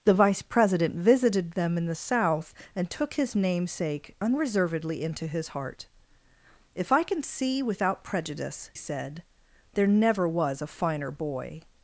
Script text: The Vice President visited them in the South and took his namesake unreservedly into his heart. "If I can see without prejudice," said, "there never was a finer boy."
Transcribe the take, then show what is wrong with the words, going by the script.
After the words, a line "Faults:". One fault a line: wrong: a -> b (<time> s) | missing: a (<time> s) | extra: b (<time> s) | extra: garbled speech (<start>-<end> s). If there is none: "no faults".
The Vice President visited them in the South and took his namesake unreservedly into his heart. "If I can see without prejudice," said, "there never was a finer boy."
Faults:
no faults